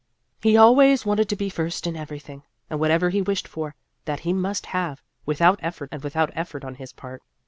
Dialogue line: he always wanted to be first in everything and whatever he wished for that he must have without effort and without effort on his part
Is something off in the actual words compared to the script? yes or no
no